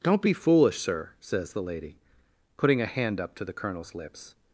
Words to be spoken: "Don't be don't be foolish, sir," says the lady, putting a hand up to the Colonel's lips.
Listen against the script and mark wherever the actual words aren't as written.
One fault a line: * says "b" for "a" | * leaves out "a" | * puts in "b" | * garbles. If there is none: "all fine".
* leaves out "don't be"